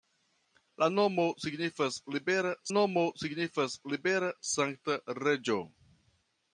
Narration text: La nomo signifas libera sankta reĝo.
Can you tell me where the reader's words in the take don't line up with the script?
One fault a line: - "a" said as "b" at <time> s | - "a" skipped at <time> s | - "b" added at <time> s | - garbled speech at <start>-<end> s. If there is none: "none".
- "nomo signifas libera" added at 2.7 s